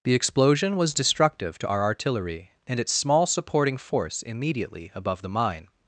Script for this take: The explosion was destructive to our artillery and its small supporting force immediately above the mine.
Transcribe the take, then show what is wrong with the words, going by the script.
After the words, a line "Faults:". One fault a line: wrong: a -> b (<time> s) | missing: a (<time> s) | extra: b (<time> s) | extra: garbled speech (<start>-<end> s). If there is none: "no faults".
The explosion was destructive to our artillery and its small supporting force immediately above the mine.
Faults:
no faults